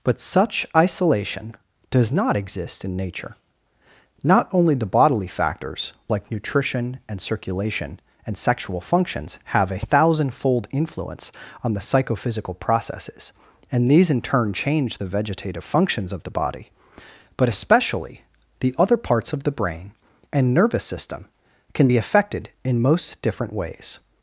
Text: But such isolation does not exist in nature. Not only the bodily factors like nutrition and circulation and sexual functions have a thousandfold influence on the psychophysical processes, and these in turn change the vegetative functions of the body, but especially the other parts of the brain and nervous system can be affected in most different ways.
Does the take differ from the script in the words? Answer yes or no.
no